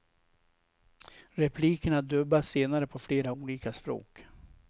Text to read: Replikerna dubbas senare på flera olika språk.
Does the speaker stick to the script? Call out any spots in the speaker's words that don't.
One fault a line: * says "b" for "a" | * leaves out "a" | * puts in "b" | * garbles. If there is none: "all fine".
all fine